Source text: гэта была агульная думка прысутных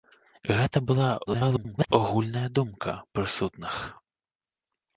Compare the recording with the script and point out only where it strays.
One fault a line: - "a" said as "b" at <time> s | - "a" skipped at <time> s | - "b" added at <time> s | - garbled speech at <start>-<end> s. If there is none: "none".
- garbled speech at 1.2-1.9 s